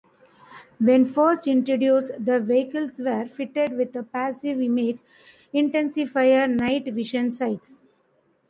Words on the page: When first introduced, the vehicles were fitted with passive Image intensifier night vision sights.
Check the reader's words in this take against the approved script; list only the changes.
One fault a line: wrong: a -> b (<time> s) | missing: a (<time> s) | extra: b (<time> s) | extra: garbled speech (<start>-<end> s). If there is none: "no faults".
no faults